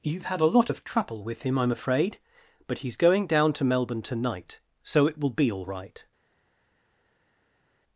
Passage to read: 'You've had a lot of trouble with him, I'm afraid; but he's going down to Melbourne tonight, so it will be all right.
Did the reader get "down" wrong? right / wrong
right